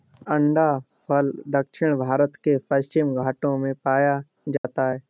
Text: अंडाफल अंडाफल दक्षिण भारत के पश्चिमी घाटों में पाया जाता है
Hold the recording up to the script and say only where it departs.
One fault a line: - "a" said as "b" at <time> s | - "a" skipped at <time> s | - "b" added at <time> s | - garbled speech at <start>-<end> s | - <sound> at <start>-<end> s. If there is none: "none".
- "अंडाफल" skipped at 1.3 s
- dropout at 4.6-4.6 s